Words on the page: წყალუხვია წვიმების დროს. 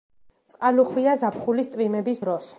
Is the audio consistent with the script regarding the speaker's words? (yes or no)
no